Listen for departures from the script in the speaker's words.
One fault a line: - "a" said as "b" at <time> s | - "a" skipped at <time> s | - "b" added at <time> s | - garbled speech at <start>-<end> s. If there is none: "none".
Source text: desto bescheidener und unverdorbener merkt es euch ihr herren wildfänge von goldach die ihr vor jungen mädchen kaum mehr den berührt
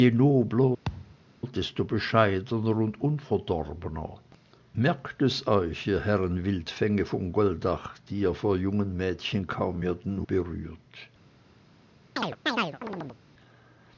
none